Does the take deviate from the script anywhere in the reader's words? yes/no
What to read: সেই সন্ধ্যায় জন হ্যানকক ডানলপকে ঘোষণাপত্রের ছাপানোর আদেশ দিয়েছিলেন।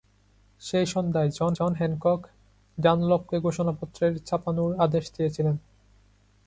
yes